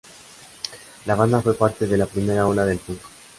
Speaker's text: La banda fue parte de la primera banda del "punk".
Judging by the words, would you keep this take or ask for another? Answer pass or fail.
fail